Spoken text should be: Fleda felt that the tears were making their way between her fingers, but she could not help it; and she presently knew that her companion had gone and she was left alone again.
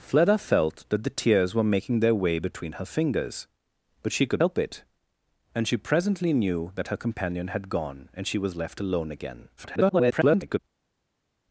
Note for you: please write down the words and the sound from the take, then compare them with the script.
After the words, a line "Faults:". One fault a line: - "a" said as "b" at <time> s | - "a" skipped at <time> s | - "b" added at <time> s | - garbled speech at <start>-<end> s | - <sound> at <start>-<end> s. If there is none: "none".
Fleda felt that the tears were making their way between her fingers, but she could help it; and she presently knew that her companion had gone and she was left alone again. [garbled]
Faults:
- "not" skipped at 4.4 s
- garbled speech at 9.6-10.6 s